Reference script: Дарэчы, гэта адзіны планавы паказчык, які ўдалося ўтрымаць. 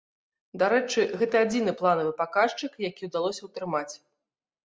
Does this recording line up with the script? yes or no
yes